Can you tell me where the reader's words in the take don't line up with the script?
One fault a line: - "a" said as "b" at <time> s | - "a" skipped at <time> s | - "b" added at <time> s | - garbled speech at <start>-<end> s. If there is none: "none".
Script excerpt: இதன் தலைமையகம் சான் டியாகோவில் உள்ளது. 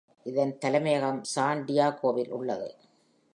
none